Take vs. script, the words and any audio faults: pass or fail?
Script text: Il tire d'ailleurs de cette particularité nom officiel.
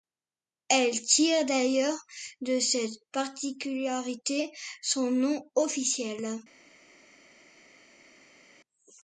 fail